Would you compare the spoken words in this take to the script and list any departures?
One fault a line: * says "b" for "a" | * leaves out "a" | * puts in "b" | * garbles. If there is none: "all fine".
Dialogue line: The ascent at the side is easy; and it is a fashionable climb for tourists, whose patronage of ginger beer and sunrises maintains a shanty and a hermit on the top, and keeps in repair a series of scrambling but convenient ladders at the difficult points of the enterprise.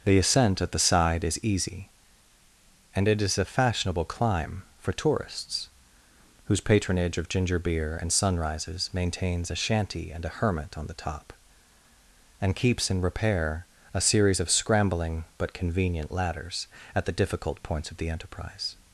all fine